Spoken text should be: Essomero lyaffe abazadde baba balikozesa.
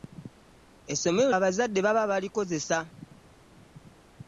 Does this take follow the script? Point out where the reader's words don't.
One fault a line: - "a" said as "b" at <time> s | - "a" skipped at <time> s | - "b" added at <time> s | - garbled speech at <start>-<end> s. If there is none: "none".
- "lyaffe" skipped at 1.3 s